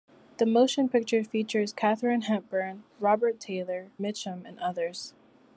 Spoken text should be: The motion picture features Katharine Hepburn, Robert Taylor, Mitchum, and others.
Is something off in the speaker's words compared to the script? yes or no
no